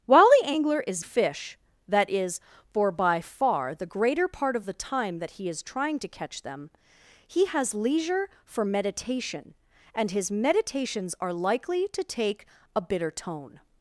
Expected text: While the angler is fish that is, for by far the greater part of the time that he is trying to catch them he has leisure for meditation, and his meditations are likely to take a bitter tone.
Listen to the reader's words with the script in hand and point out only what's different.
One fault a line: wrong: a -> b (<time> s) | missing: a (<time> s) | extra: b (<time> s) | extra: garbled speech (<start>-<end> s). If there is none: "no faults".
no faults